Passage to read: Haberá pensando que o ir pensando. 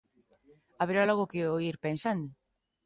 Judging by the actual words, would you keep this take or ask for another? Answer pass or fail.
fail